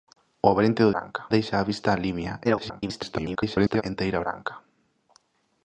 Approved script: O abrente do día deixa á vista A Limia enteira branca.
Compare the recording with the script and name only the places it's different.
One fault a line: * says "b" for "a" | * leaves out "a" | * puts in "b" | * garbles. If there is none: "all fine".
* says "branca" for "día"
* garbles